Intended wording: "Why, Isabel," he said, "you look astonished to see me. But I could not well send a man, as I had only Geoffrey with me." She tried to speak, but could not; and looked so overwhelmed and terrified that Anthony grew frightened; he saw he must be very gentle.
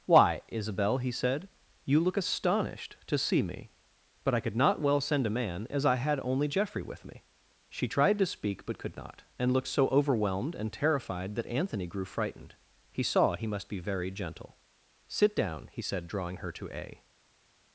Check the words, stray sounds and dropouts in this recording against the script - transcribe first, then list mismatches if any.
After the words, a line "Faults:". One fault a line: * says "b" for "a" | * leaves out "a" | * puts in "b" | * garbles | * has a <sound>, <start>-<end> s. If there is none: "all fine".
"Why, Isabel," he said, "you look astonished to see me. But I could not well send a man, as I had only Geoffrey with me." She tried to speak, but could not; and looked so overwhelmed and terrified that Anthony grew frightened; he saw he must be very gentle. "Sit down," he said, drawing her to a
Faults:
* puts in "Sit down he said drawing her to a"